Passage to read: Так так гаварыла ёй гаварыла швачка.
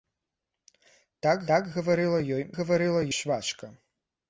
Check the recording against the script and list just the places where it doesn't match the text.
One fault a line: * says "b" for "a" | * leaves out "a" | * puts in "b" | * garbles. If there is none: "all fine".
all fine